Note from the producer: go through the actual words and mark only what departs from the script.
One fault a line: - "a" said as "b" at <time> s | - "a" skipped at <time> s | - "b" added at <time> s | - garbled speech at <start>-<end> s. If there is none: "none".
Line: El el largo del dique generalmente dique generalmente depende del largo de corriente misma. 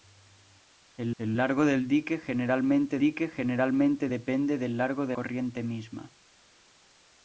none